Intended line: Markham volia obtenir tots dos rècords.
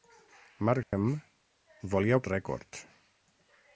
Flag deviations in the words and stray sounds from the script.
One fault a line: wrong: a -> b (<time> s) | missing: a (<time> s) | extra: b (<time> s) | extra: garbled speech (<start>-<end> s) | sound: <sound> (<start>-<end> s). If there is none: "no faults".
sound: dropout (0.8-0.9 s)
missing: obtenir tots dos (2.2 s)